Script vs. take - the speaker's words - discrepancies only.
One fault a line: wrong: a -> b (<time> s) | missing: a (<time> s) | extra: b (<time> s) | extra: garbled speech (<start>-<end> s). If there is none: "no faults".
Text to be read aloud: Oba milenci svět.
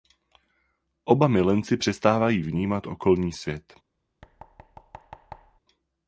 extra: přestávají vnímat okolní (1.8 s)